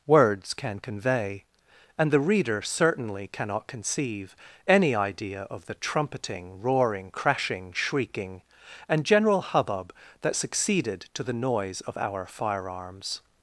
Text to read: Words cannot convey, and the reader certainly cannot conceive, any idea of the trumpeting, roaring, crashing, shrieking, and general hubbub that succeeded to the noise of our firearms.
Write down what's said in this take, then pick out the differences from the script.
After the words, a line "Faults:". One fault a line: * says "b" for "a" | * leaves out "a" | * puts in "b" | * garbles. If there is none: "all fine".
Words can convey, and the reader certainly cannot conceive, any idea of the trumpeting, roaring, crashing, shrieking, and general hubbub that succeeded to the noise of our firearms.
Faults:
* says "can" for "cannot"